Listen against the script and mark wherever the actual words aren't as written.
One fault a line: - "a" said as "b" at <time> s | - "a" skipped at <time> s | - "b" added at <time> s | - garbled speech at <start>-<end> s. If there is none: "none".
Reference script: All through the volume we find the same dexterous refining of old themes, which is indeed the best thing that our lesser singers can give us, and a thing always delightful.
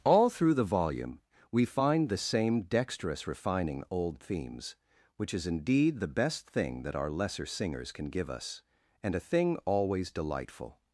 - "of" skipped at 3.8 s